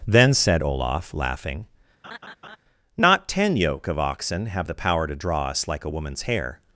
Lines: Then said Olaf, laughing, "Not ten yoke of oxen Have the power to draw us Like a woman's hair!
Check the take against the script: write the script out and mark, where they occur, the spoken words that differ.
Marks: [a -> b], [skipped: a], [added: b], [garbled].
Then said Olaf, laughing, "Not ten yoke of oxen Have the power to draw us Like a woman's hair!